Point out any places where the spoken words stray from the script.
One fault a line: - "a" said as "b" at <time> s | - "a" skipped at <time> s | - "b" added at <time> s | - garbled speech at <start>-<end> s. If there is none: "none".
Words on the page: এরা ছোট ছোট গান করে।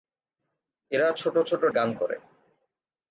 none